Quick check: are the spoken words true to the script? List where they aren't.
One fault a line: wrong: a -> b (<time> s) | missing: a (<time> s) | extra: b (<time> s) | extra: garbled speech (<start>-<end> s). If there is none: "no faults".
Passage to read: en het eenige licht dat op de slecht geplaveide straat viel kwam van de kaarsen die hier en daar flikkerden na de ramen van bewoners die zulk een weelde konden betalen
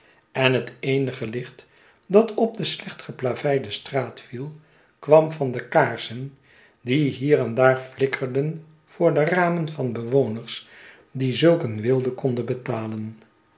wrong: na -> voor (8.8 s)